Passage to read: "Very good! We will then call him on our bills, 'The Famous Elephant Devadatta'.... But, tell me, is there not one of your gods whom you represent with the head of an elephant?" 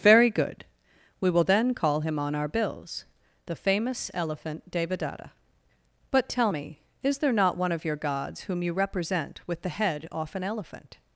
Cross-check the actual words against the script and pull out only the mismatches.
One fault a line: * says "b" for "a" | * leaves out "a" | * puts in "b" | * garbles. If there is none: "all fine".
* says "off" for "of"